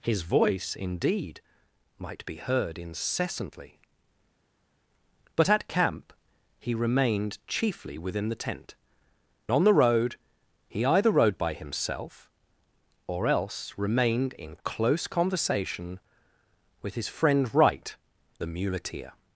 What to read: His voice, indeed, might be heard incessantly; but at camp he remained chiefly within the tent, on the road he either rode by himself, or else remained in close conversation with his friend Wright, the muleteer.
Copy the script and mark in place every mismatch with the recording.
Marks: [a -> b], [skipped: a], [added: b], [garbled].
His voice, indeed, might be heard incessantly; but at camp he remained chiefly within the tent, on the road he either rode by himself, or else remained in close conversation with his friend Wright, the muleteer.